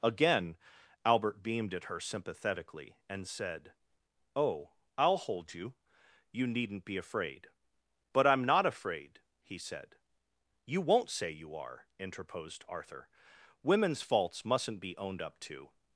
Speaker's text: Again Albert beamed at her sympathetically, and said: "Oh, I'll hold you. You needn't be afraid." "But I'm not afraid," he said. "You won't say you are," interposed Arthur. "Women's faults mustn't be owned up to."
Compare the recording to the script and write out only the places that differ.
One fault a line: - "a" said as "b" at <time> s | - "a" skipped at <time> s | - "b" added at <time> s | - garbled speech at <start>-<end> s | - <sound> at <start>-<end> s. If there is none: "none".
none